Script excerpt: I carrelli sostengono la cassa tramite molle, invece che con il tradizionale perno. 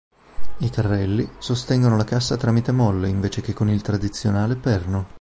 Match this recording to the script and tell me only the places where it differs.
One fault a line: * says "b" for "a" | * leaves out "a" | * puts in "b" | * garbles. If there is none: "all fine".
all fine